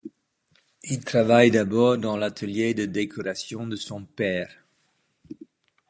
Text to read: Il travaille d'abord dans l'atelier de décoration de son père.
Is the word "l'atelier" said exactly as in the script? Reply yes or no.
yes